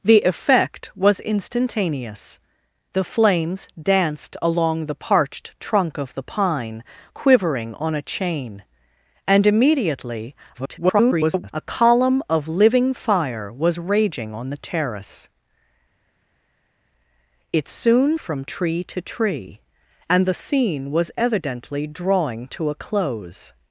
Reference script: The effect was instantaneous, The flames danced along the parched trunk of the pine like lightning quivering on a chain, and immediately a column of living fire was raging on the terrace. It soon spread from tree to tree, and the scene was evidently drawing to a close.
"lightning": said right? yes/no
no